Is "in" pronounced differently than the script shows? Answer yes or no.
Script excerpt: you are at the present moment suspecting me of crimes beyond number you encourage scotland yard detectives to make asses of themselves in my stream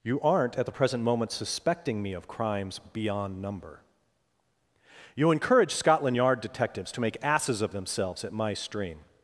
yes